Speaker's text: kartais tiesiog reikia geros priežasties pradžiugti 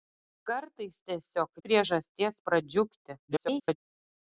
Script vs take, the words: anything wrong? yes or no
yes